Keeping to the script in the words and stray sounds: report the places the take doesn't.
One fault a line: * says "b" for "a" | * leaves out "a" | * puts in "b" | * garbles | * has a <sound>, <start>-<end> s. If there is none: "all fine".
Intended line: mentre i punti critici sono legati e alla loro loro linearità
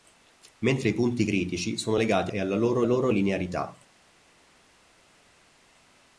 all fine